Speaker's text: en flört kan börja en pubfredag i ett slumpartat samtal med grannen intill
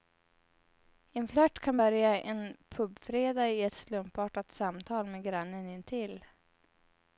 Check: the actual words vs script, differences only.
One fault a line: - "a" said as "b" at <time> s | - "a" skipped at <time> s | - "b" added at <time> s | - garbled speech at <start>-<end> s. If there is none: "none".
none